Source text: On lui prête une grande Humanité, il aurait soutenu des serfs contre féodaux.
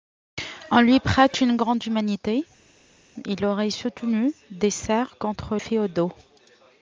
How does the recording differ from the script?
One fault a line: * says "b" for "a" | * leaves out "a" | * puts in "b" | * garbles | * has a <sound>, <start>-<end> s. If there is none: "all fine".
all fine